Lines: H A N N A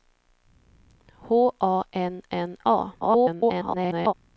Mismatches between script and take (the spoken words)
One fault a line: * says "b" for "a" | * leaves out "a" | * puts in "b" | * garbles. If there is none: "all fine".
* garbles